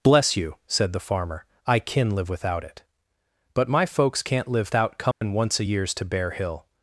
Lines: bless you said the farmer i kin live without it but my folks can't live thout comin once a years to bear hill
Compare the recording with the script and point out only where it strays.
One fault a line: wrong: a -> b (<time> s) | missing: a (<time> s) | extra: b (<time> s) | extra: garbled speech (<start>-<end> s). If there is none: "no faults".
no faults